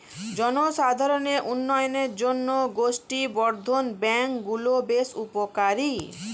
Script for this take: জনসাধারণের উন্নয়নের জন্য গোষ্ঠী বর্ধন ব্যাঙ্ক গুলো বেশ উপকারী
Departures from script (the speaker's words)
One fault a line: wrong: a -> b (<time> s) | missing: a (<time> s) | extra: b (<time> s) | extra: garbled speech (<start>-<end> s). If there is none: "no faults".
no faults